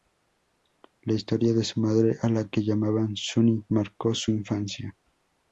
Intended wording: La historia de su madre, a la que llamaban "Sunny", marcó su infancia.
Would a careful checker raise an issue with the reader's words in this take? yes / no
no